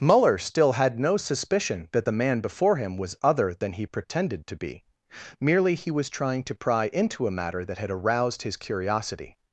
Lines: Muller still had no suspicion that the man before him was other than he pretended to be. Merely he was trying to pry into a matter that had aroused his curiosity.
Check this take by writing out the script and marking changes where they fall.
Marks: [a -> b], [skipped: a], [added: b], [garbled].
Muller still had no suspicion that the man before him was other than he pretended to be. Merely he was trying to pry into a matter that had aroused his curiosity.